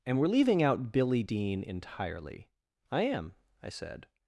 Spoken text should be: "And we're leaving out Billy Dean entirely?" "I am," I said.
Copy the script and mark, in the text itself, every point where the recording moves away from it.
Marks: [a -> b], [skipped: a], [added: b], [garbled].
"And we're leaving out Billy Dean entirely?" "I am," I said.